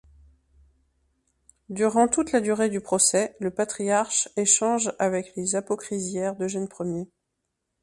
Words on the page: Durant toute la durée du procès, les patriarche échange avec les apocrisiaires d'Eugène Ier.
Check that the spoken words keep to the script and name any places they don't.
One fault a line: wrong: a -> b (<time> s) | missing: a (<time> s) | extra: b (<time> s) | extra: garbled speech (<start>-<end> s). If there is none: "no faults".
wrong: les -> le (3.4 s)